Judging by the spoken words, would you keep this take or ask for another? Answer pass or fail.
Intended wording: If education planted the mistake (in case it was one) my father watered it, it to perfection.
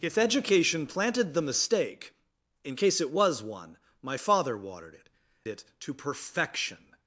pass